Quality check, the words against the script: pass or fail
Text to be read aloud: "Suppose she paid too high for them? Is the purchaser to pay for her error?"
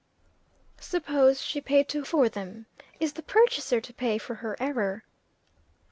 fail